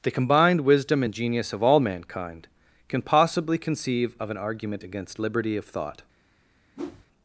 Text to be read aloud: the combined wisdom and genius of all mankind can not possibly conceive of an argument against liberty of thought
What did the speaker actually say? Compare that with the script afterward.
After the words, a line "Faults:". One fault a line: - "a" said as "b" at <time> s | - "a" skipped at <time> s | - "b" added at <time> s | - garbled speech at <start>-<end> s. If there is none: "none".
the combined wisdom and genius of all mankind can possibly conceive of an argument against liberty of thought
Faults:
- "not" skipped at 3.0 s